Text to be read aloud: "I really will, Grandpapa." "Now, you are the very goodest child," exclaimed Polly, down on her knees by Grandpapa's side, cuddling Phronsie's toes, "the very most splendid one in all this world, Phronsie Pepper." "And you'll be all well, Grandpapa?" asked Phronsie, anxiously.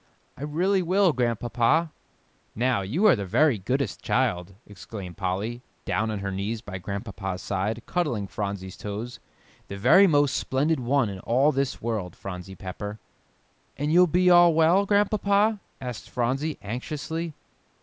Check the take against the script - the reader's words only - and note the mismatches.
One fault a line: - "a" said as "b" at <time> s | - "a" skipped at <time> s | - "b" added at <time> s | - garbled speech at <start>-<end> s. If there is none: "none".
none